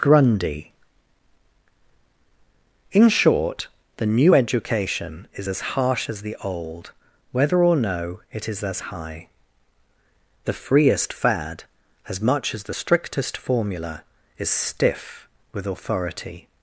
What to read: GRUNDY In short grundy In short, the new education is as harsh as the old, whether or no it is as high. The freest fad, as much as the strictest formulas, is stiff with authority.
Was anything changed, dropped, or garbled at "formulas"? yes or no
yes